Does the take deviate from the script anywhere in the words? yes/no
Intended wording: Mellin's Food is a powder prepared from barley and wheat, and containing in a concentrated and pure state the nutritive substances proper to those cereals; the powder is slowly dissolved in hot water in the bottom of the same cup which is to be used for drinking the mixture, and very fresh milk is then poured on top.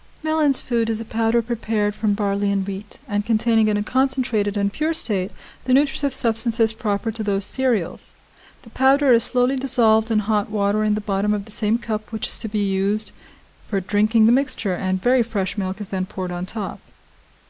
no